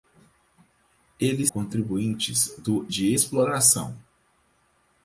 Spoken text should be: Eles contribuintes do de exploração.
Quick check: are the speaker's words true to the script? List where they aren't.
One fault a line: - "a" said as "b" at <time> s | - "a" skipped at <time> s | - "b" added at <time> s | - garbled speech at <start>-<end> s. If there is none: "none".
none